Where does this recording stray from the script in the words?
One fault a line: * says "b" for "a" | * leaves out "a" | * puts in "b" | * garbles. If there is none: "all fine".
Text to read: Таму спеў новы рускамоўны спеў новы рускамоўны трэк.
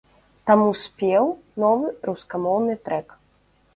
* leaves out "спеў новы рускамоўны"